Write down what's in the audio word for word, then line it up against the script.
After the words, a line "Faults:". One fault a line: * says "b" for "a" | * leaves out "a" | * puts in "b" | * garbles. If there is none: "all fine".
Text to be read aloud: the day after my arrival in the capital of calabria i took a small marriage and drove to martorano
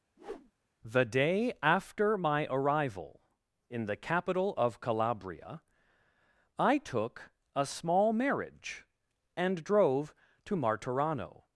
the day after my arrival in the capital of calabria i took a small marriage and drove to martorano
Faults:
all fine